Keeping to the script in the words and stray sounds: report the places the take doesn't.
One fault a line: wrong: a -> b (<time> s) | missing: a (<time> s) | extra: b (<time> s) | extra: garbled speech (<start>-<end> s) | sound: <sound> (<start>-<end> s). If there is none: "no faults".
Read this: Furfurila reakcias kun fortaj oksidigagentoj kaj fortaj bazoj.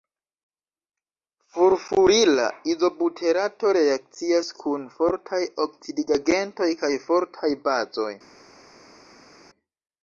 extra: izobuterato (2.7 s)